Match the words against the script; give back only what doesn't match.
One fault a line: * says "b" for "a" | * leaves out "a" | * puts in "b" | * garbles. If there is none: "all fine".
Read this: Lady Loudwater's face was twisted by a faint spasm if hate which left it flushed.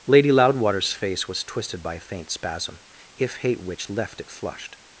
all fine